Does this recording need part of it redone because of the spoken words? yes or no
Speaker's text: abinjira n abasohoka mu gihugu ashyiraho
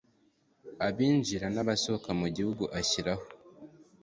no